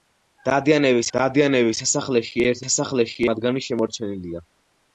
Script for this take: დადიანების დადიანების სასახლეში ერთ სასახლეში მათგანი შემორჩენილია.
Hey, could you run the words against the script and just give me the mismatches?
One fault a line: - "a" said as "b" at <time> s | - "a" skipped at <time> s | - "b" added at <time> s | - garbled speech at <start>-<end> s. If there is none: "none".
none